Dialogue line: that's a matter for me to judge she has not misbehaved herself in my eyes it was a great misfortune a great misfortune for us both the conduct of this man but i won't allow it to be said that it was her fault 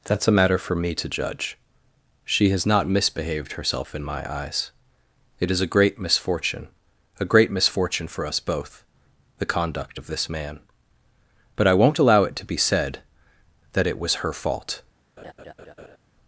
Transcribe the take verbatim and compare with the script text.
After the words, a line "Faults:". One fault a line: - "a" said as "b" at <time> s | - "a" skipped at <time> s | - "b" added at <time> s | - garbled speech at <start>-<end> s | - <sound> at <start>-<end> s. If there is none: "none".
that's a matter for me to judge she has not misbehaved herself in my eyes it is a great misfortune a great misfortune for us both the conduct of this man but i won't allow it to be said that it was her fault
Faults:
- "was" said as "is" at 5.5 s
- laugh at 15.2-16.0 s